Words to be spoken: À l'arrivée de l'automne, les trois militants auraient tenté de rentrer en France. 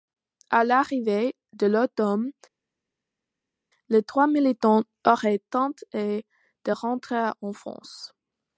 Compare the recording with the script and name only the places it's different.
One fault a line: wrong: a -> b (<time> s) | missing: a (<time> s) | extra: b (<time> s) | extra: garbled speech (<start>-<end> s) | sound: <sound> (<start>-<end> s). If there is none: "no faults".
no faults